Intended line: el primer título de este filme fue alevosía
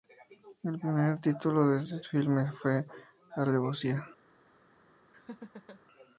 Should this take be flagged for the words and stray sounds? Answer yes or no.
yes